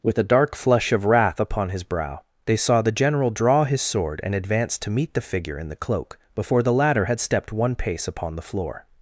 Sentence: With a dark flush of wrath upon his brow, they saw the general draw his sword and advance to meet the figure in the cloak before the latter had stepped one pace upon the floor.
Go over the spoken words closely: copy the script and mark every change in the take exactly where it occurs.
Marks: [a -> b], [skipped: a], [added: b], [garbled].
With a dark flush of wrath upon his brow, they saw the general draw his sword and advance to meet the figure in the cloak before the latter had stepped one pace upon the floor.